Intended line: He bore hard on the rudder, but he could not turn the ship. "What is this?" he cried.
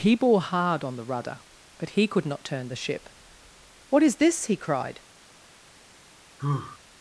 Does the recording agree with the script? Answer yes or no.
yes